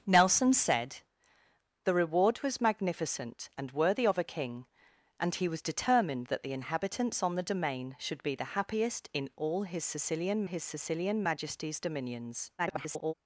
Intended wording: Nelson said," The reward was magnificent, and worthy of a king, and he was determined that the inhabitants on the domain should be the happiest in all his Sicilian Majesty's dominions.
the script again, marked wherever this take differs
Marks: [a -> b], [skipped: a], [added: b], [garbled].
Nelson said," The reward was magnificent, and worthy of a king, and he was determined that the inhabitants on the domain should be the happiest in all his Sicilian [added: his Sicilian] Majesty's dominions. [garbled]